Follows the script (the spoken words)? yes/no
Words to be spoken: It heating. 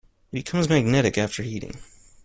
no